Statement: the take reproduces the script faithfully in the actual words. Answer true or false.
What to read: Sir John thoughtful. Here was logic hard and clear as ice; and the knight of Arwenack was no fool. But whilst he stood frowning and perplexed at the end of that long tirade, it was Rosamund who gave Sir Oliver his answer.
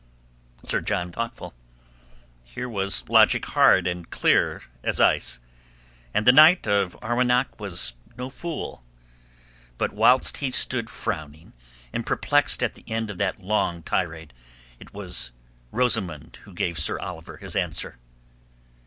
true